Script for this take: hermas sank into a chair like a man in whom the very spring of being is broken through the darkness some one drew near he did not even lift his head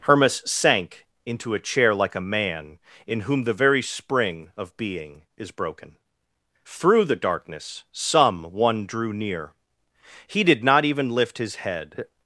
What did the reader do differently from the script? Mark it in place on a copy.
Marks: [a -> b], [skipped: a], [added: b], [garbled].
hermas sank into a chair like a man in whom the very spring of being is broken through the darkness some one drew near he did not even lift his head